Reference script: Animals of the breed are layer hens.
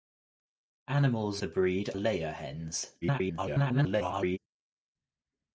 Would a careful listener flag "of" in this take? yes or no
yes